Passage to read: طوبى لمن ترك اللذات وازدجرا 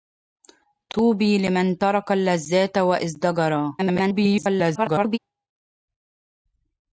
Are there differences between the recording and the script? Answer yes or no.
yes